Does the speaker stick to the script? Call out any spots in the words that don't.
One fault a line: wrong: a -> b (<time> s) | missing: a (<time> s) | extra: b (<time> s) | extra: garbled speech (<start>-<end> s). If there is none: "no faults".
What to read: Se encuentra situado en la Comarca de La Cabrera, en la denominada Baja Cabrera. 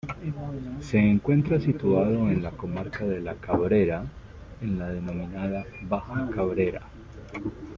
no faults